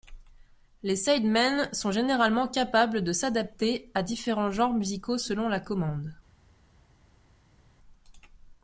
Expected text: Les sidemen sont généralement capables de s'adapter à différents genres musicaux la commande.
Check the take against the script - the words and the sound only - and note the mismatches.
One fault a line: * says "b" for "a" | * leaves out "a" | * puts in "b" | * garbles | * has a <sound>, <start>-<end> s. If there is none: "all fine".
* puts in "selon"